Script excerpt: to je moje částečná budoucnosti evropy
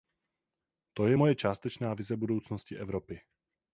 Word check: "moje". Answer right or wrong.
right